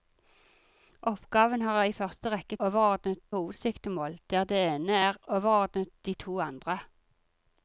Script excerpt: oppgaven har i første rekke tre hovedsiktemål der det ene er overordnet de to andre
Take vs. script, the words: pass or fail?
fail